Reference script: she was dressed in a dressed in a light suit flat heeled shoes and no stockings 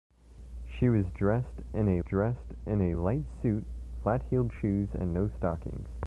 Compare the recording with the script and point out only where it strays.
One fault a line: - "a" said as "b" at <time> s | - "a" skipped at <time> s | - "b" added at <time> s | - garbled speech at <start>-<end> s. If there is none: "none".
none